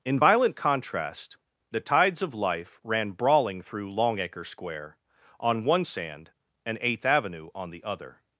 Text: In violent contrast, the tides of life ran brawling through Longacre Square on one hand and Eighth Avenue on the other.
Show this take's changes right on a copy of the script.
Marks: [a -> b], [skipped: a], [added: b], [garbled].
In violent contrast, the tides of life ran brawling through Longacre Square on one [hand -> sand] and Eighth Avenue on the other.